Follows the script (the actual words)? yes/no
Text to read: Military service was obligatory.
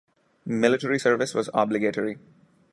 yes